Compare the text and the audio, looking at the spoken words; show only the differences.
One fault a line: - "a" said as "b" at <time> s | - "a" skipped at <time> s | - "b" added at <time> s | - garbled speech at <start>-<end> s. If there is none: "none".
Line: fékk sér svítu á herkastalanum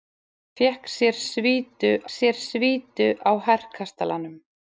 - "sér svítu" added at 2.2 s